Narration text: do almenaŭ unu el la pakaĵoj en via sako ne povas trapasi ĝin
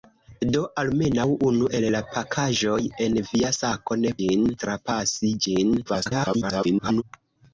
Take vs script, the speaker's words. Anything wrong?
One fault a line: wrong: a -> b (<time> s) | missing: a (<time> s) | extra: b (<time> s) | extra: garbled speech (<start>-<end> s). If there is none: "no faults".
wrong: povas -> ĝin (4.2 s)
extra: garbled speech (5.8-7.0 s)